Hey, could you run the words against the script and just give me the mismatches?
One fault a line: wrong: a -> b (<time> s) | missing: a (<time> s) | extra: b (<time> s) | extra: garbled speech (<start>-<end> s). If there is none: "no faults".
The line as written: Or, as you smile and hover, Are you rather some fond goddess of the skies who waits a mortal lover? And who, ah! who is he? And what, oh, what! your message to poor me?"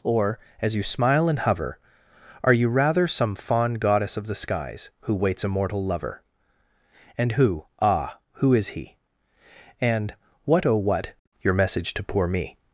no faults